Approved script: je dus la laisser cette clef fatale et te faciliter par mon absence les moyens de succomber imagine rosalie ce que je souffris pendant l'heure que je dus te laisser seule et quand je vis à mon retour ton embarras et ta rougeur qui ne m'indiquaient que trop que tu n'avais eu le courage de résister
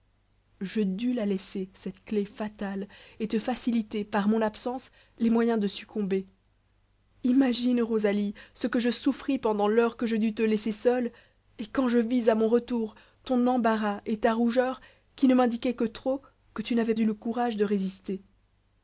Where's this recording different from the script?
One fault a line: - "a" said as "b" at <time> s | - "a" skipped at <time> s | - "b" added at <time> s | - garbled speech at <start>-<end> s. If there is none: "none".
none